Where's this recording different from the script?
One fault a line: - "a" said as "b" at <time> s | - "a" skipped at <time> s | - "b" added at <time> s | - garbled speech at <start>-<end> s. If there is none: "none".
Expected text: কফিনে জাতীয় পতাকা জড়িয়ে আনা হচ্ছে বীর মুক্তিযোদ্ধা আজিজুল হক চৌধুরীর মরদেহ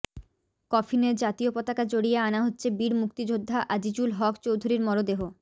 none